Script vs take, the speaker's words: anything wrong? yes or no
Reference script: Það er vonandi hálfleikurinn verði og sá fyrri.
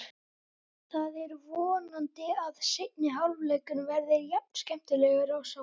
yes